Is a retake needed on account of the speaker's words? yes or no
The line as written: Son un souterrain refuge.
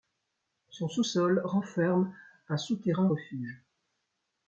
yes